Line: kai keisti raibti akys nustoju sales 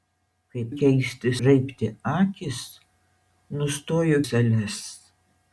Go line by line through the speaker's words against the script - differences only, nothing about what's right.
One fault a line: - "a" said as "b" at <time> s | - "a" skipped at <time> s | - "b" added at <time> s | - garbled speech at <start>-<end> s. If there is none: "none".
none